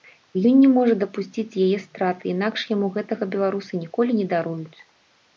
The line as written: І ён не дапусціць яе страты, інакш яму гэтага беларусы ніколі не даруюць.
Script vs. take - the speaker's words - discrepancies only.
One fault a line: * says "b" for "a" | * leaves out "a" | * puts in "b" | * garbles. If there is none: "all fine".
* puts in "можа"